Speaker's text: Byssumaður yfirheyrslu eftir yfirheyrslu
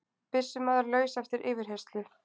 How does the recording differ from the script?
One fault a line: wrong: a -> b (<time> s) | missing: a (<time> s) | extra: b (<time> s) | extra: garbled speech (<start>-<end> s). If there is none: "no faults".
wrong: yfirheyrslu -> laus (0.9 s)